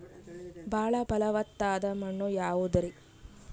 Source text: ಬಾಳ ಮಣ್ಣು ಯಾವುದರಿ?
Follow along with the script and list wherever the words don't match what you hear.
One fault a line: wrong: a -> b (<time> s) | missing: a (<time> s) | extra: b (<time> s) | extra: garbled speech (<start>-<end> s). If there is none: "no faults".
extra: ಫಲವತ್ತಾದ (1.1 s)